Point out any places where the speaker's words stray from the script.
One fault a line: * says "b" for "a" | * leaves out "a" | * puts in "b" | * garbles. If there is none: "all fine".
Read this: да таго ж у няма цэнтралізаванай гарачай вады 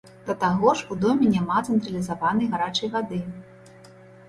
* puts in "доме"